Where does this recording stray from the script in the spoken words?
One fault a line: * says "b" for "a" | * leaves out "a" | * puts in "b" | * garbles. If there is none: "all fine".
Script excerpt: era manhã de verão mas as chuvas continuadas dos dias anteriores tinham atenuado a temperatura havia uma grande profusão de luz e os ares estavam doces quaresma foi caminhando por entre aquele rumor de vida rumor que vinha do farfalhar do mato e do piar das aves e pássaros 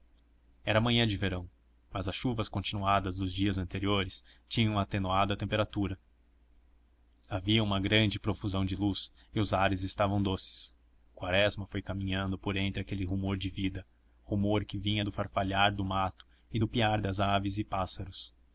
all fine